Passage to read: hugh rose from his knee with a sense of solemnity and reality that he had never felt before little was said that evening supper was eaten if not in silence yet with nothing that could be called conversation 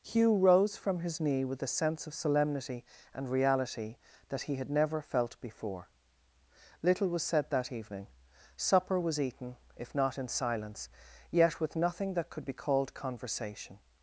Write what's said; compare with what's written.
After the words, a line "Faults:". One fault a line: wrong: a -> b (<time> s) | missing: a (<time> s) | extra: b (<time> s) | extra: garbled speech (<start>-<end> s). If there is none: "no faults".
hugh rose from his knee with a sense of solemnity and reality that he had never felt before little was said that evening supper was eaten if not in silence yet with nothing that could be called conversation
Faults:
no faults